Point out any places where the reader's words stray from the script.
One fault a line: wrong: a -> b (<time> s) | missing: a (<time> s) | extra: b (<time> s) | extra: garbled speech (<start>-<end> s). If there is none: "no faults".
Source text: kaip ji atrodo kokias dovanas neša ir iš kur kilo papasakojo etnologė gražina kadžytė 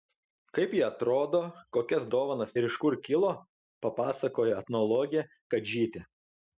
missing: neša (2.5 s)
missing: gražina (5.3 s)